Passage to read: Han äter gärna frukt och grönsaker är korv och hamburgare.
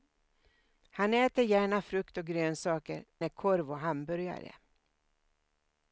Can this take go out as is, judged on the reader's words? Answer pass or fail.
pass